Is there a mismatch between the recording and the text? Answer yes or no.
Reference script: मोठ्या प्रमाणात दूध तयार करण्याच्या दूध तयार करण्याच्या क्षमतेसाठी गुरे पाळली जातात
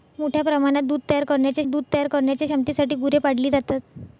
no